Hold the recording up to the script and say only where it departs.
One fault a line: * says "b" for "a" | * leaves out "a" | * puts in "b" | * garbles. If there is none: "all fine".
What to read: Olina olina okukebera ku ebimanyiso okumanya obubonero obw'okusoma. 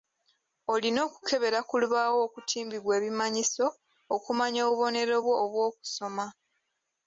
* leaves out "olina"
* puts in "lubaawo okutimbibwa"
* puts in "bwo"